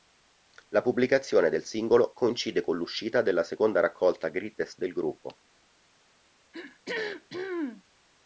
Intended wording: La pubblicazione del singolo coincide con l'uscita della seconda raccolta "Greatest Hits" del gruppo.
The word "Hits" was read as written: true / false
false